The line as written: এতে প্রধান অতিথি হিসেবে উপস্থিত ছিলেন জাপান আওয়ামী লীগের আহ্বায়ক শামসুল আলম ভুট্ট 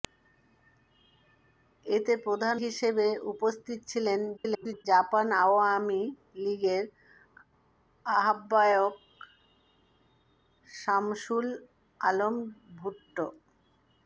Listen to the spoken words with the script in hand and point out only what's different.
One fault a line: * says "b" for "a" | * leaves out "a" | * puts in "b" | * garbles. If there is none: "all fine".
* leaves out "অতিথি"
* garbles